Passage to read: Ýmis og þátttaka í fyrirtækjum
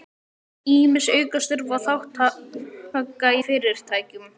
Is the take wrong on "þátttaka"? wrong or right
right